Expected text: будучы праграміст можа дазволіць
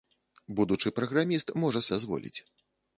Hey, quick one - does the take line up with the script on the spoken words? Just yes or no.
yes